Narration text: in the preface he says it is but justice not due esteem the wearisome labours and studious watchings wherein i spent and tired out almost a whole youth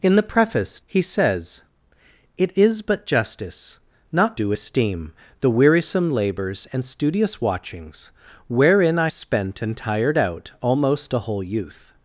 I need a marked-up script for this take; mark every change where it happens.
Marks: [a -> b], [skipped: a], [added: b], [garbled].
in the preface he says it is but justice not due esteem the wearisome labours and studious watchings wherein i spent and tired out almost a whole youth